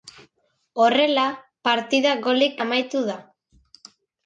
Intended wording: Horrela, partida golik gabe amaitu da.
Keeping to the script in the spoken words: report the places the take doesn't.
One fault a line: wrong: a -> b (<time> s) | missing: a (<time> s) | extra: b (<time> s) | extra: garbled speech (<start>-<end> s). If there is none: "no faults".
missing: gabe (2.6 s)